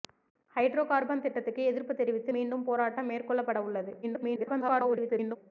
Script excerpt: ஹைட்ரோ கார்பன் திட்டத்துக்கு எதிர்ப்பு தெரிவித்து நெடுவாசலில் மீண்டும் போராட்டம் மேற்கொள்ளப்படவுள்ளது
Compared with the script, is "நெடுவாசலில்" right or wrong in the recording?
wrong